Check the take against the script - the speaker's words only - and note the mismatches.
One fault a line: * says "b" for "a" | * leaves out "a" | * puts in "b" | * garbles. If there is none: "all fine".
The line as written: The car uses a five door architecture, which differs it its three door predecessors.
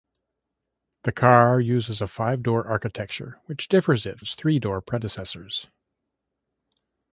all fine